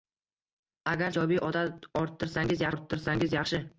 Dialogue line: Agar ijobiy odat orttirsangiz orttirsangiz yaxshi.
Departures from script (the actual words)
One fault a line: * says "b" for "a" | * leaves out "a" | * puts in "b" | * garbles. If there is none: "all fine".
all fine